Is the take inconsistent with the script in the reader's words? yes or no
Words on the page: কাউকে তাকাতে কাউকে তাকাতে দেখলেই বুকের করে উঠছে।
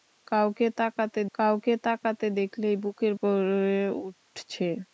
no